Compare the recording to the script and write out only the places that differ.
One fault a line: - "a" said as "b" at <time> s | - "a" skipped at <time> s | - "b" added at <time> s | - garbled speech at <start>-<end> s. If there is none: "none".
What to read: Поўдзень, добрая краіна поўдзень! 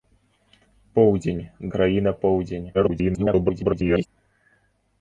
- "добрая" skipped at 1.4 s
- garbled speech at 2.7-4.1 s